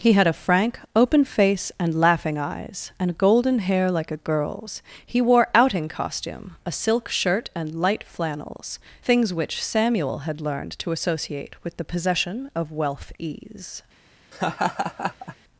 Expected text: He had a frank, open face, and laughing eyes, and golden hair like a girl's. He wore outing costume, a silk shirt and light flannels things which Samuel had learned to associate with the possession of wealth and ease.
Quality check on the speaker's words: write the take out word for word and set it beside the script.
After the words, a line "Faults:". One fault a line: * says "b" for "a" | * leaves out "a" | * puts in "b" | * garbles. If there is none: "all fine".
He had a frank, open face, and laughing eyes, and golden hair like a girl's. He wore outing costume, a silk shirt and light flannels things which Samuel had learned to associate with the possession of wealth ease.
Faults:
* leaves out "and"